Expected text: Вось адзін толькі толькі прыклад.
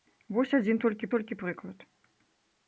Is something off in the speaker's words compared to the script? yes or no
no